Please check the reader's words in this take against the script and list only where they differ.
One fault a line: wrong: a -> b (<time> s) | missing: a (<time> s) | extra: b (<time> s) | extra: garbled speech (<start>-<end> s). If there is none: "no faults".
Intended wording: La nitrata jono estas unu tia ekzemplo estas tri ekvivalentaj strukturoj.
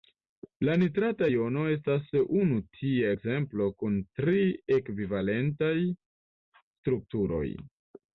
wrong: estas -> kun (3.8 s)